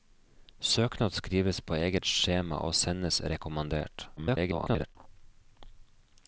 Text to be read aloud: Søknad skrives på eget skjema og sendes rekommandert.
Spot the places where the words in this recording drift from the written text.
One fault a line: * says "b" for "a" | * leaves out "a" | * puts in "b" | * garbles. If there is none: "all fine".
* garbles